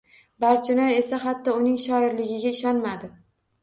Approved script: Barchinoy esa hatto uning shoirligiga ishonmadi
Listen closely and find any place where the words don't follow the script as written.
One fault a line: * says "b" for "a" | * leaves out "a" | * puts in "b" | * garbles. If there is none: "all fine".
all fine